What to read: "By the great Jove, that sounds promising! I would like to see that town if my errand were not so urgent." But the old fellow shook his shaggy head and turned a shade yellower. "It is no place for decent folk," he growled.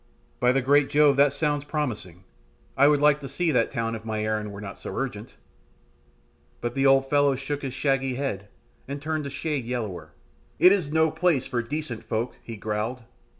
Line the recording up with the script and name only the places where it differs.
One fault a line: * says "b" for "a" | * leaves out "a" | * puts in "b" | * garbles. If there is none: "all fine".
all fine